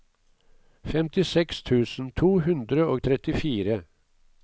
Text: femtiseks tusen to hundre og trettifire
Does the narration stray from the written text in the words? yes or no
no